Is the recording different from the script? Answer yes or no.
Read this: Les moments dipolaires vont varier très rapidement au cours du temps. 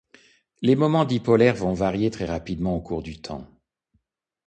no